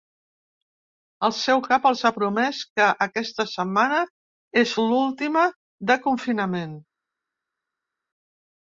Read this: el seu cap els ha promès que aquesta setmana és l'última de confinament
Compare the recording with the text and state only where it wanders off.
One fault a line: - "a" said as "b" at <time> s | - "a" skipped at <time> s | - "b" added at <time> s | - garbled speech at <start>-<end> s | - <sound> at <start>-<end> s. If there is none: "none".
none